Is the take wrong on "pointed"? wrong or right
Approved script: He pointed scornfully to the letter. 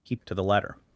wrong